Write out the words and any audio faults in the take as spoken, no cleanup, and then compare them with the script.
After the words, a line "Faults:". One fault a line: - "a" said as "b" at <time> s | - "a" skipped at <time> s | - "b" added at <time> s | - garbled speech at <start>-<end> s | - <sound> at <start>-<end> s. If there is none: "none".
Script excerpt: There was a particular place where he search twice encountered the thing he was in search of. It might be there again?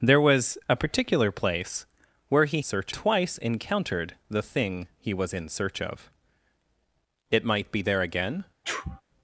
There was a particular place where he search twice encountered the thing he was in search of. It might be there again?
Faults:
- sneeze at 8.6-9.0 s